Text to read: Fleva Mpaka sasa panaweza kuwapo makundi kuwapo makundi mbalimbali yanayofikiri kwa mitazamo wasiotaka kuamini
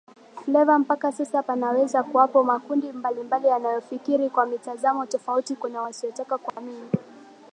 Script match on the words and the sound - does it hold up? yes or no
no